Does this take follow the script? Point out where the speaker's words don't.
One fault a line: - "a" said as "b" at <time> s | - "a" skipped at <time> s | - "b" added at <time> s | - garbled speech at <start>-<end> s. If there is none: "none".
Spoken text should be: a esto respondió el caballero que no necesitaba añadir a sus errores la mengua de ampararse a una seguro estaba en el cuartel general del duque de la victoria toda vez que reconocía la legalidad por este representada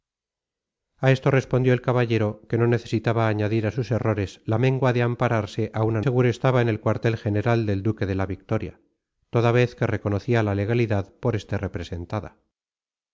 none